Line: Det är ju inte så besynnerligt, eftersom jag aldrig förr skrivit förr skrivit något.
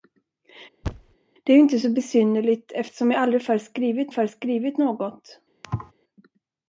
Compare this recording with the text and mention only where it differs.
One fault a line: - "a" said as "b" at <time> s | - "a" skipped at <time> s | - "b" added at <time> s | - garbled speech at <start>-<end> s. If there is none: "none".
none